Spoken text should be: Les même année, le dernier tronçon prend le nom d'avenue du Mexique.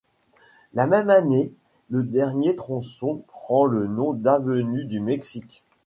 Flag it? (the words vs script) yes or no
yes